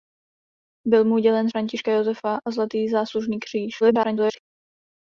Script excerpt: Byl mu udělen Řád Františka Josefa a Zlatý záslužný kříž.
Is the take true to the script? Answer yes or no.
no